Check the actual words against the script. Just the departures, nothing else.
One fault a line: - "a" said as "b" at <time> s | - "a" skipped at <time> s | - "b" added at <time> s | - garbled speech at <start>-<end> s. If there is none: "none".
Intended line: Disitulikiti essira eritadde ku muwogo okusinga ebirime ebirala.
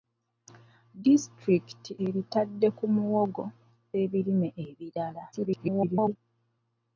- "essira" skipped at 1.9 s
- "okusinga" skipped at 3.4 s
- garbled speech at 5.3-6.2 s